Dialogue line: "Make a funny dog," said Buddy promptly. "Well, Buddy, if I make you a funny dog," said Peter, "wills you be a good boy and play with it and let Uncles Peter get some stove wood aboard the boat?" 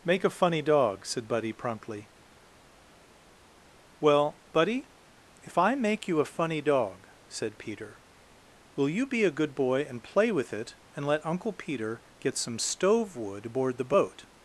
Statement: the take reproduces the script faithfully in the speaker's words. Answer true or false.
false